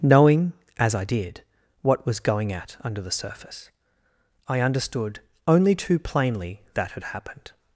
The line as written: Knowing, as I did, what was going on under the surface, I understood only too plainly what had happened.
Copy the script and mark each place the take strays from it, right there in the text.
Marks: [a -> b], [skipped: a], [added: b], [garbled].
Knowing, as I did, what was going [on -> at] under the surface, I understood only too plainly [what -> that] had happened.